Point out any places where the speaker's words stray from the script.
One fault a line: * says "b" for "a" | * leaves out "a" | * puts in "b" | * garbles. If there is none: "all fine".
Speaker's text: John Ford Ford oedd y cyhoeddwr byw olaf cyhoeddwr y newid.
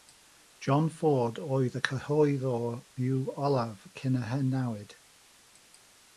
* leaves out "Ford"
* says "cyn" for "cyhoeddwr"